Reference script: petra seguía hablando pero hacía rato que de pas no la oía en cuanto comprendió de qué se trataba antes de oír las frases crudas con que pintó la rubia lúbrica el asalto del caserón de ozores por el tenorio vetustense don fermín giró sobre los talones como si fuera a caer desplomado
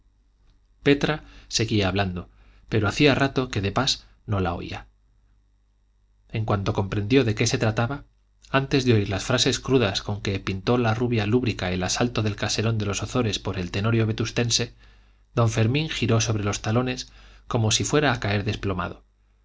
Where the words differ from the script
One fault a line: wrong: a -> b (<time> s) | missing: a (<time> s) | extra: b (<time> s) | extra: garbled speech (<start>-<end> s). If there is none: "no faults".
extra: los (12.9 s)